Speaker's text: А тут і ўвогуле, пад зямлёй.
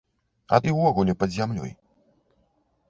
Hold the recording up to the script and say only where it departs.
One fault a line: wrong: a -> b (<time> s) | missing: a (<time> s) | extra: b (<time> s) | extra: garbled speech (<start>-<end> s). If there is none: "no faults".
missing: тут (0.6 s)